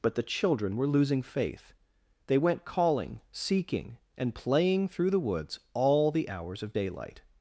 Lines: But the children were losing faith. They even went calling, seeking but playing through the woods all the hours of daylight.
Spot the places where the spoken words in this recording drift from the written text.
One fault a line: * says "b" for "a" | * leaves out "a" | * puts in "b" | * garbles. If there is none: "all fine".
* leaves out "even"
* says "and" for "but"